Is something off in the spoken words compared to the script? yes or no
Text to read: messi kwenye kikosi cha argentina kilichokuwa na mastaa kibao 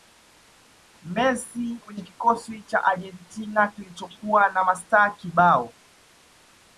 no